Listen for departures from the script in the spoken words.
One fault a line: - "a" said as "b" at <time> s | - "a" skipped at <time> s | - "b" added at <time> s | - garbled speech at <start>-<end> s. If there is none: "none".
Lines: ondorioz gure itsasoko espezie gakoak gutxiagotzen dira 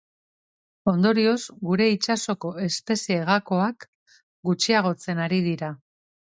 - "ari" added at 5.3 s